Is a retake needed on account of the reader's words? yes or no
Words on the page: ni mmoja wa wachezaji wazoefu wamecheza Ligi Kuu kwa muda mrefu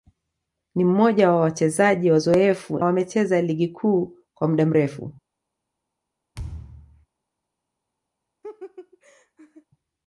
no